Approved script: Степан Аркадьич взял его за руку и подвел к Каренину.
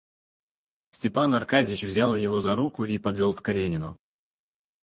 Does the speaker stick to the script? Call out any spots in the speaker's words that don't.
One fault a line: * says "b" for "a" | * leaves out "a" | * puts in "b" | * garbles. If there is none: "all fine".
all fine